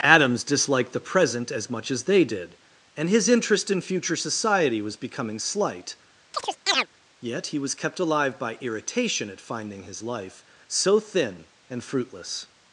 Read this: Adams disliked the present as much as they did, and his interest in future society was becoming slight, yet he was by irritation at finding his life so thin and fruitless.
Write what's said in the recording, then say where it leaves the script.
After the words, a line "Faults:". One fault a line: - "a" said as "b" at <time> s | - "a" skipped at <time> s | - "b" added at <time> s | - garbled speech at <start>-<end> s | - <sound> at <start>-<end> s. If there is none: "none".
Adams disliked the present as much as they did, and his interest in future society was becoming slight, yet he was kept alive by irritation at finding his life so thin and fruitless.
Faults:
- chirp at 6.3-6.9 s
- "kept alive" added at 7.7 s